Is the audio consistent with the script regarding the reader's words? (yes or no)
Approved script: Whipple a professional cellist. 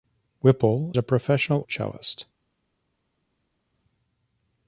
yes